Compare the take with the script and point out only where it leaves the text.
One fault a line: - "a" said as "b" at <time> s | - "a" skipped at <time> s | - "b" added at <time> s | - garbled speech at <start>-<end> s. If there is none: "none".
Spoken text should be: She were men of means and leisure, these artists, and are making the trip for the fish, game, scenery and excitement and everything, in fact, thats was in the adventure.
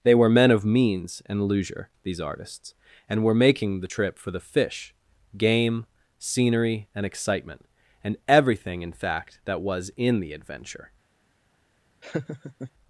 - "She" said as "They" at 0.0 s
- "are" said as "were" at 3.2 s
- "thats" said as "that" at 9.4 s